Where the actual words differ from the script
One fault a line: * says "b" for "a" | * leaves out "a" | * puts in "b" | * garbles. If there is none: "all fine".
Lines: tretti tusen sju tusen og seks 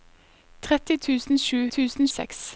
all fine